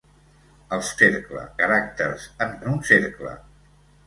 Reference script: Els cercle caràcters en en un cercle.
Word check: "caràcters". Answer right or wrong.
right